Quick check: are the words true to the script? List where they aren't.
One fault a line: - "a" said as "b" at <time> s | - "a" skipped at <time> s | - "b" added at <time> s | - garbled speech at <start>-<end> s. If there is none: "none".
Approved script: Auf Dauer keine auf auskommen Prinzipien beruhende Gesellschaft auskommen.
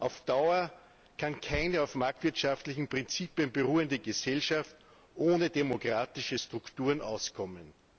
- "kann" added at 1.1 s
- "auskommen" said as "marktwirtschaftlichen" at 1.9 s
- "ohne demokratische Strukturen" added at 5.1 s